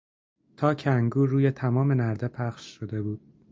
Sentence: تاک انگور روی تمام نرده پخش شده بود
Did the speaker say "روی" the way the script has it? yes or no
yes